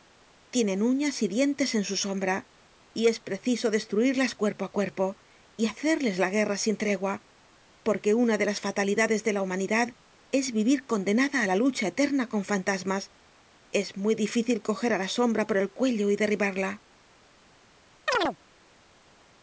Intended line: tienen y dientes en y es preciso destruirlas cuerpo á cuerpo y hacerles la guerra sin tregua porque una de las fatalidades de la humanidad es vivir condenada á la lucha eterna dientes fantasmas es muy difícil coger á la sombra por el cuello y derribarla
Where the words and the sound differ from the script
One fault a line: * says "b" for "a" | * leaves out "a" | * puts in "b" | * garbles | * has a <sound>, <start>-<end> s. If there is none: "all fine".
* puts in "uñas"
* puts in "su sombra"
* says "con" for "dientes"
* has a chirp, 18.1-18.4 s